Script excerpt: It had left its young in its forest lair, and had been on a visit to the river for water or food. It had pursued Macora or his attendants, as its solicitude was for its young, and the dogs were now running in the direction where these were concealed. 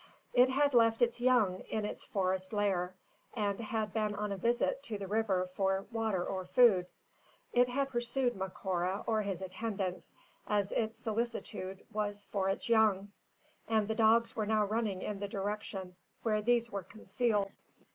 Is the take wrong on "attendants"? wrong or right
right